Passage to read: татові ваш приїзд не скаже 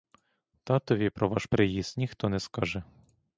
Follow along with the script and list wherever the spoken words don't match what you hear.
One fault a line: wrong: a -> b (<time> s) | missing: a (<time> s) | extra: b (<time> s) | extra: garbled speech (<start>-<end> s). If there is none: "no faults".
extra: про (1.1 s)
extra: ніхто (2.0 s)